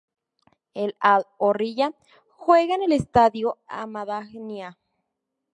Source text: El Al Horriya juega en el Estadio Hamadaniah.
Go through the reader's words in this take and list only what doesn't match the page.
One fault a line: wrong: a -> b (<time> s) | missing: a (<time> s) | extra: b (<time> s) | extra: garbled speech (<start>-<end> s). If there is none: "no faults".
no faults